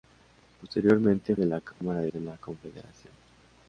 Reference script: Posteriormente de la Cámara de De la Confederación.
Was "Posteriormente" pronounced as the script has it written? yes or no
yes